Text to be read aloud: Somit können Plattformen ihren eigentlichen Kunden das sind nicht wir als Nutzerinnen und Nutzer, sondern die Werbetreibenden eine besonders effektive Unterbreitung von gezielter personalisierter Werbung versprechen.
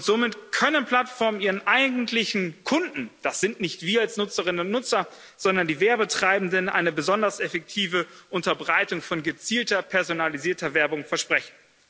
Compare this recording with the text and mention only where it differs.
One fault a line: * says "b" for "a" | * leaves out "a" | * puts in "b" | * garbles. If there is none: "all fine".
all fine